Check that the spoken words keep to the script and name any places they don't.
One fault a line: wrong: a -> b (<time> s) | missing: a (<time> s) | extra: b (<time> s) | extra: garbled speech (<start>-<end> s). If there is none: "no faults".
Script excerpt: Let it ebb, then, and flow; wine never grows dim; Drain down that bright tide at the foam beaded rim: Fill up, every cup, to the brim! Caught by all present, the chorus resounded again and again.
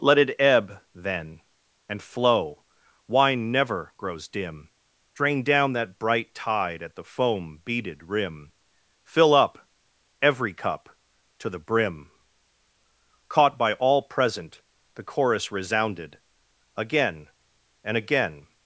no faults